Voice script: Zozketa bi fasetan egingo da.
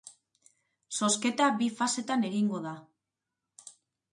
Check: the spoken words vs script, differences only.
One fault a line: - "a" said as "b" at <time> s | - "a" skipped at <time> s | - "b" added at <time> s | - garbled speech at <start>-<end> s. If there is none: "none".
none